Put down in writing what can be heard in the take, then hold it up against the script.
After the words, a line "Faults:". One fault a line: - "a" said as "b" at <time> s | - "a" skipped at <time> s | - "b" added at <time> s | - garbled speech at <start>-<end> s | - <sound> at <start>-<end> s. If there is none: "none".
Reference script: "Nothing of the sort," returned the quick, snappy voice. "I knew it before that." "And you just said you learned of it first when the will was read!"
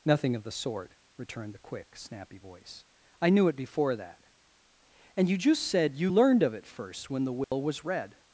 "Nothing of the sort," returned the quick, snappy voice. "I knew it before that." "And you just said you learned of it first when the will was read!"
Faults:
- dropout at 7.4-7.5 s